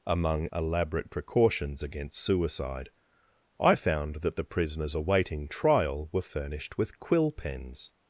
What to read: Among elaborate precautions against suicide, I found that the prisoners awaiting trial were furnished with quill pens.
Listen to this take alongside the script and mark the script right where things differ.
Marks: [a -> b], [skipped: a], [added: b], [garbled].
Among elaborate precautions against suicide, I found that the prisoners awaiting trial were furnished with quill pens.